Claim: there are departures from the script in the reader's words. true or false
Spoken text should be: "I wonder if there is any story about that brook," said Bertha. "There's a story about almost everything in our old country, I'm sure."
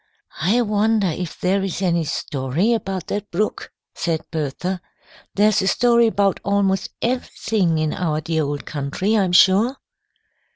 true